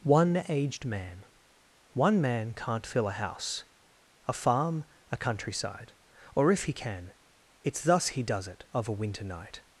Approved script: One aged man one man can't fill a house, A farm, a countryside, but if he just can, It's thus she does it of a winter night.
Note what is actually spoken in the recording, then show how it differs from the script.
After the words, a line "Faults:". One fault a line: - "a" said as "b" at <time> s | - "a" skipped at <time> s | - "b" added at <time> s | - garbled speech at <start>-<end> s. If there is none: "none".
One aged man one man can't fill a house, A farm, a countryside, or if he can, It's thus he does it of a winter night.
Faults:
- "but" said as "or" at 6.3 s
- "just" skipped at 6.7 s
- "she" said as "he" at 8.1 s